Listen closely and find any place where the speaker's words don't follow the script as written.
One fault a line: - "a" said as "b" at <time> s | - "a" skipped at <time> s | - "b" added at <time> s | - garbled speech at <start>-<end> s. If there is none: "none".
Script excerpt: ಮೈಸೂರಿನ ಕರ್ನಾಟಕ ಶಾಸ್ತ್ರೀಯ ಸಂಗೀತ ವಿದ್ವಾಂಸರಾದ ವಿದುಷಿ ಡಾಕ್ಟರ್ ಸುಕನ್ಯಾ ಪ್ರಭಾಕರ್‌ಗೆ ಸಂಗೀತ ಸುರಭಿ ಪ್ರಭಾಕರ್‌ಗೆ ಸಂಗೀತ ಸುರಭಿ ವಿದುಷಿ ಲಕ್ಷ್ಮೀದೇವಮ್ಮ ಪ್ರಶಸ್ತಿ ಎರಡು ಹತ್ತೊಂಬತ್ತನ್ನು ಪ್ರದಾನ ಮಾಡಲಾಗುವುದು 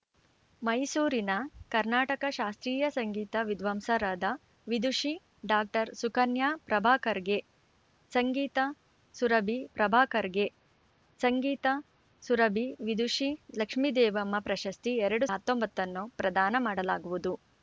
none